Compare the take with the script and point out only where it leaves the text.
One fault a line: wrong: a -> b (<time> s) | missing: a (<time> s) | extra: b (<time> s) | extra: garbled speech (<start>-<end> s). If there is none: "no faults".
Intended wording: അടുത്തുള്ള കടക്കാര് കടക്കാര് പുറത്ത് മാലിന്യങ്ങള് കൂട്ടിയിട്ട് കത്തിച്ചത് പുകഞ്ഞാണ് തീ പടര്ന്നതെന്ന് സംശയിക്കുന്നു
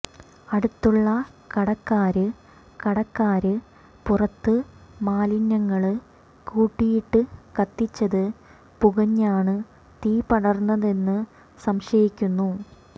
no faults